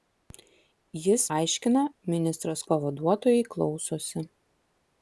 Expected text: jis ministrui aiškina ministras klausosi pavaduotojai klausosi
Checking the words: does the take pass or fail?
fail